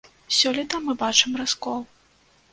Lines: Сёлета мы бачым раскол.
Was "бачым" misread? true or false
false